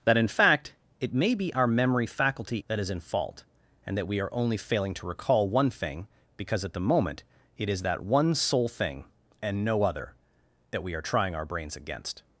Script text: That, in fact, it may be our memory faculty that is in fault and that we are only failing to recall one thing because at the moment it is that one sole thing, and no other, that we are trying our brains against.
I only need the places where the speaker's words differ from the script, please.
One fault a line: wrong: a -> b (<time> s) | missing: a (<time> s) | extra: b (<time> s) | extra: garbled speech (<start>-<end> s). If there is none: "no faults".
no faults